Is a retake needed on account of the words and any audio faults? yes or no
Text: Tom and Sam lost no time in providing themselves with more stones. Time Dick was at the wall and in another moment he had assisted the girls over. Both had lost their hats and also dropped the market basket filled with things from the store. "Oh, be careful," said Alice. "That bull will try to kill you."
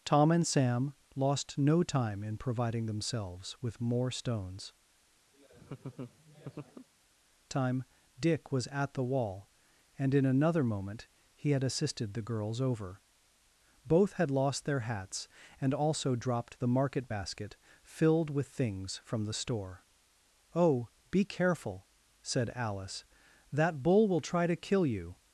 yes